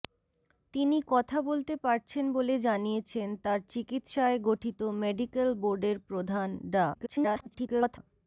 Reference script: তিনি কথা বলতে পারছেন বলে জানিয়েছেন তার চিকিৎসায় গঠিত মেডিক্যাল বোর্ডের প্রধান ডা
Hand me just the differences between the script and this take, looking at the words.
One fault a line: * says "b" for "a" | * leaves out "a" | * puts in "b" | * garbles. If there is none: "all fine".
* garbles